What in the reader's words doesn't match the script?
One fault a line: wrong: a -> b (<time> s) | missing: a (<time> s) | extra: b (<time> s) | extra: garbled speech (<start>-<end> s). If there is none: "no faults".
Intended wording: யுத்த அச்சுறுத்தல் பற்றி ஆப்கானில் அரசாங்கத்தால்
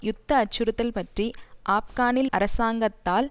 no faults